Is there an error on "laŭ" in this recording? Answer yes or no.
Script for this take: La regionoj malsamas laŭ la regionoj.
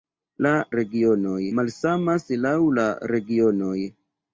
no